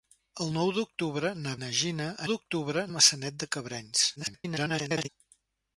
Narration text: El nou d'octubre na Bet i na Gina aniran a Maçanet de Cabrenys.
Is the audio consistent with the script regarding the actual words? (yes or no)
no